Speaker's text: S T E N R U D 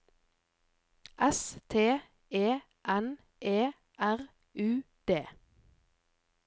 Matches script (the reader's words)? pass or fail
fail